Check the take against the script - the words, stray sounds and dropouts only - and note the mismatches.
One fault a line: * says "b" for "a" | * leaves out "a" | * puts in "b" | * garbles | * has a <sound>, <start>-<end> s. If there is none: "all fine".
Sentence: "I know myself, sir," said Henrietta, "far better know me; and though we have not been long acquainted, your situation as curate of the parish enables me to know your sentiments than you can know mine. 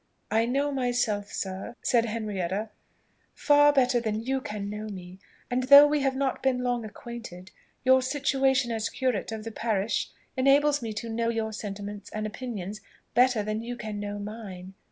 * puts in "than you can"
* puts in "and opinions better"